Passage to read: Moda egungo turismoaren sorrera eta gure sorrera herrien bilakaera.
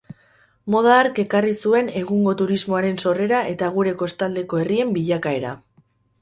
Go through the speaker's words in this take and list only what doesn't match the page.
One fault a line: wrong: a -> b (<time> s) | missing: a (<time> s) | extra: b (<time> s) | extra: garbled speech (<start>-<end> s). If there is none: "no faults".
extra: hark ekarri zuen (1.0 s)
wrong: sorrera -> kostaldeko (4.0 s)